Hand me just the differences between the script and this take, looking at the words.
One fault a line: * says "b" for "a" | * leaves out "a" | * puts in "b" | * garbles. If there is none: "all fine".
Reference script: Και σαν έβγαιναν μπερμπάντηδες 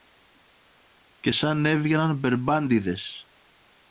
all fine